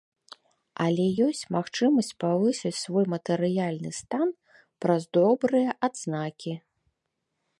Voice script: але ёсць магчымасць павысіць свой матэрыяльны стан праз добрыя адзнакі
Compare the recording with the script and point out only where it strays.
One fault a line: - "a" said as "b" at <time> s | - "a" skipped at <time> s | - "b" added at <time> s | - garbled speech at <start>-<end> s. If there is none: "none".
none